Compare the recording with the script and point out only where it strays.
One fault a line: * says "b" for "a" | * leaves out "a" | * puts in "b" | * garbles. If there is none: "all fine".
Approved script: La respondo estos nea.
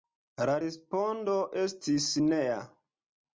* says "estis" for "estos"